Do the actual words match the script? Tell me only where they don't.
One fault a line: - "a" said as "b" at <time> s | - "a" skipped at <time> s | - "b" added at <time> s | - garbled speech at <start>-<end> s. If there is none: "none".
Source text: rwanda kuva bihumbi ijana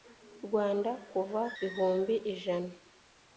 none